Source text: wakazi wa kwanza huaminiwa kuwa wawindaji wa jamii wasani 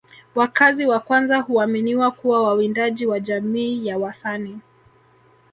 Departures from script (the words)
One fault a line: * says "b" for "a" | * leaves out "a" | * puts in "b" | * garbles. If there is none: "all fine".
* puts in "ya"